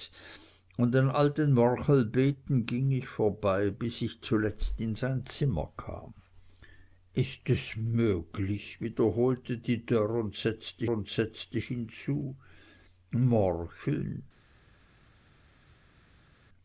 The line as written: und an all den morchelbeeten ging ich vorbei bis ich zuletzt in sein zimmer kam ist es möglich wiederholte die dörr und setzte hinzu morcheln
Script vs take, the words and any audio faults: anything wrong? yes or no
yes